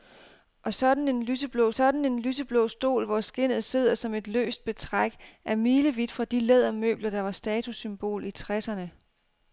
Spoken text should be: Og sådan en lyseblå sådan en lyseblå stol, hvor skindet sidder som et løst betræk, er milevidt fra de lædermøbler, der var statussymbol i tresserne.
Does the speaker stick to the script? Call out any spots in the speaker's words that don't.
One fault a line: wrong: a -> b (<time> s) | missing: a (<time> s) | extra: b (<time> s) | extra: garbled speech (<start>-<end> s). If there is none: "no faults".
no faults